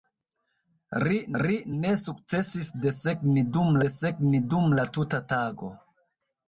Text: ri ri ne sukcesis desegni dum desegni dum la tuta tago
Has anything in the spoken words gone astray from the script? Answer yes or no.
no